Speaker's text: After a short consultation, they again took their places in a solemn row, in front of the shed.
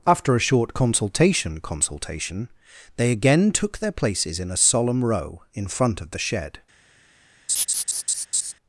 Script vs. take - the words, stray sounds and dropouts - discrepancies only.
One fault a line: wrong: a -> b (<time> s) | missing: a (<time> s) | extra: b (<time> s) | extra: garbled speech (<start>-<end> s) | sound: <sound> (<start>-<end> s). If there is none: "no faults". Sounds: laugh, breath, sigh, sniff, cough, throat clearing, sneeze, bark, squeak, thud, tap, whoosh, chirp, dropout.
extra: consultation (1.6 s)
sound: laugh (7.5-8.5 s)